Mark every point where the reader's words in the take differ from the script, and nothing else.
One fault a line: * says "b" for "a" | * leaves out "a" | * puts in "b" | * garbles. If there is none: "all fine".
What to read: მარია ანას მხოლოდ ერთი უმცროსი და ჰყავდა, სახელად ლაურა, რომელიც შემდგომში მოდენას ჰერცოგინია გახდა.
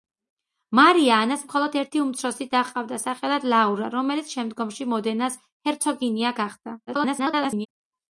* garbles